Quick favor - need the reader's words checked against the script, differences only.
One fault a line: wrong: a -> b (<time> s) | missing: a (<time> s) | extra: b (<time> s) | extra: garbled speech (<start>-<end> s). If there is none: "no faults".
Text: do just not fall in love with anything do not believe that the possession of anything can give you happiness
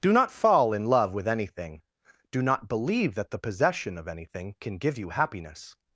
missing: just (0.1 s)